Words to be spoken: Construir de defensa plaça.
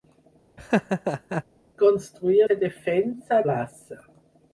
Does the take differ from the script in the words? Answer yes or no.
no